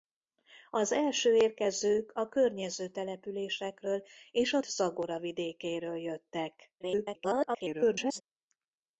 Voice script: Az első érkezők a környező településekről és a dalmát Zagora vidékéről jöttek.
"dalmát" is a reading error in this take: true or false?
true